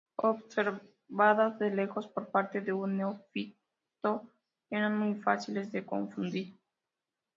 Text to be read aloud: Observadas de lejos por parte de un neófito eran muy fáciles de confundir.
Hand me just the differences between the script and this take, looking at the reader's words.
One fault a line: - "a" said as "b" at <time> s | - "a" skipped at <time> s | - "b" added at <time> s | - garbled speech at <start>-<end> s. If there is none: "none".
none